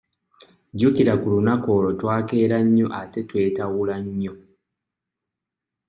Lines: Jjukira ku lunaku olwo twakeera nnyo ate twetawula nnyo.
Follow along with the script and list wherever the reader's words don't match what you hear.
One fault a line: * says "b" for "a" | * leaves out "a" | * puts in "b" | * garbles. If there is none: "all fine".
all fine